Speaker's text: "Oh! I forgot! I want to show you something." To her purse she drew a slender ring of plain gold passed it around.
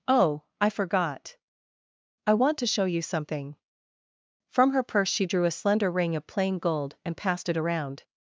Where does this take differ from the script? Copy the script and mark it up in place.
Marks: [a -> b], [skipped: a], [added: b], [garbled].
"Oh! I forgot! I want to show you something." [To -> From] her purse she drew a slender ring of plain gold [added: and] passed it around.